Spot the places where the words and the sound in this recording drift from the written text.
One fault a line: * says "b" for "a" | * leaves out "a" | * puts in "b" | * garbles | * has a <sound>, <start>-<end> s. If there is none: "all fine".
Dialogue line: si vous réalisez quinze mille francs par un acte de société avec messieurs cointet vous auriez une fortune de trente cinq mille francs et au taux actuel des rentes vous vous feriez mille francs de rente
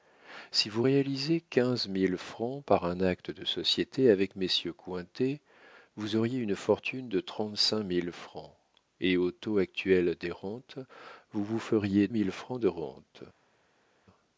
all fine